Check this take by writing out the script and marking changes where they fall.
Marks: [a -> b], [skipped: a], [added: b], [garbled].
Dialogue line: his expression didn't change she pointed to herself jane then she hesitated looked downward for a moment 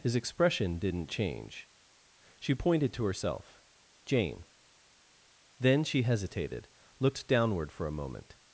his expression didn't change she pointed to herself jane then she hesitated looked downward for a moment